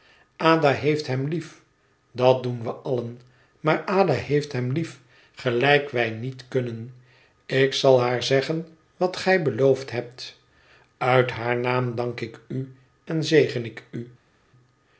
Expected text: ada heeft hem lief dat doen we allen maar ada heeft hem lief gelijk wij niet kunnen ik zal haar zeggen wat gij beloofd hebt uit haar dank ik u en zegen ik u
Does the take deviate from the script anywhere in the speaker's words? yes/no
yes